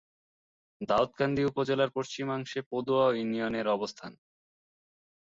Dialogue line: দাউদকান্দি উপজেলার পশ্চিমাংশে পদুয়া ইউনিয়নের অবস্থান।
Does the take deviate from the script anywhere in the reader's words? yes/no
no